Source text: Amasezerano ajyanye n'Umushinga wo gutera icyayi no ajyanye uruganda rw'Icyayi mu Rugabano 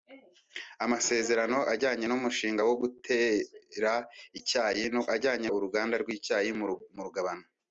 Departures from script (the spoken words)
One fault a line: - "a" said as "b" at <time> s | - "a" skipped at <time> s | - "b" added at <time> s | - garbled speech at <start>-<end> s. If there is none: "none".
none